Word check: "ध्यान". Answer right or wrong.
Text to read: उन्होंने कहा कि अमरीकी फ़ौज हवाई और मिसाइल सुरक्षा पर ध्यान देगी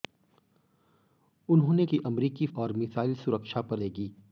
wrong